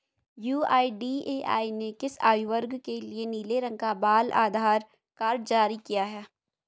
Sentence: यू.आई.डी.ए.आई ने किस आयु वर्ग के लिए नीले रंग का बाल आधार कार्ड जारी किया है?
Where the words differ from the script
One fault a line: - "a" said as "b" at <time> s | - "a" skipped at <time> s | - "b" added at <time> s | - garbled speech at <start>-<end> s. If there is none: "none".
none